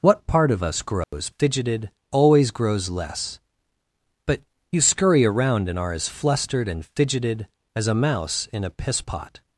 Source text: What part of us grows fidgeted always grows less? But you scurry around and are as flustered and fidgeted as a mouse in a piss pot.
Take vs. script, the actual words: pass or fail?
pass